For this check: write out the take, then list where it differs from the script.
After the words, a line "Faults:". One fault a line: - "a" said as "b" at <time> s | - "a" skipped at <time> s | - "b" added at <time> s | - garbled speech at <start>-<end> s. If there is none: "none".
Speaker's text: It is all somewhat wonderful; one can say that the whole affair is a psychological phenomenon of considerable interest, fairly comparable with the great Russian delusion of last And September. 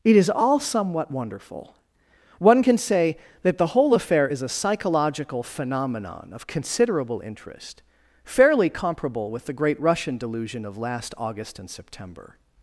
It is all somewhat wonderful; one can say that the whole affair is a psychological phenomenon of considerable interest, fairly comparable with the great Russian delusion of last August and September.
Faults:
- "August" added at 11.2 s